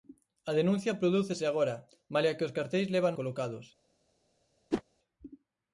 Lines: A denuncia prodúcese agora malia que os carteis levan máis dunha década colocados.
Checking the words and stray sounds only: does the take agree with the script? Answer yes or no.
no